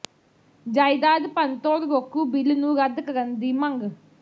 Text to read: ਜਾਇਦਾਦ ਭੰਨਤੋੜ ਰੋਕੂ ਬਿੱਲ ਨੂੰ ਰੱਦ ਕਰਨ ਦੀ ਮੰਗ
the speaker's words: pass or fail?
pass